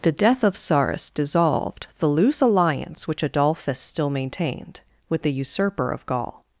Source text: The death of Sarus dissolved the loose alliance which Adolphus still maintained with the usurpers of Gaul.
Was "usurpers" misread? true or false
true